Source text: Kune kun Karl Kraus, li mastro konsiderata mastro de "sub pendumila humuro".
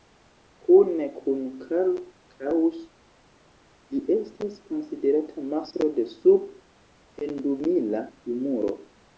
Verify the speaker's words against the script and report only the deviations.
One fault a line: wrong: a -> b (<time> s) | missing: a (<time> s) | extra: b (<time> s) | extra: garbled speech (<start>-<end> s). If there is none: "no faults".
wrong: mastro -> estas (4.2 s)